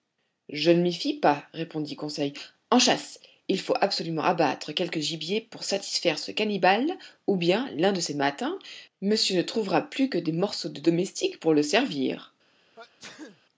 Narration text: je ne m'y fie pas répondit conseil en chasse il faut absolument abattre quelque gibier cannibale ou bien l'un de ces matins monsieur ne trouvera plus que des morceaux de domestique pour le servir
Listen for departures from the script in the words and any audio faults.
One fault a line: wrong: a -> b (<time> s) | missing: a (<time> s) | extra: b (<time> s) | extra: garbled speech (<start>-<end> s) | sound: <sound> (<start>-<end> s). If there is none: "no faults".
extra: pour satisfaire ce (5.4 s)
sound: sneeze (12.8-13.4 s)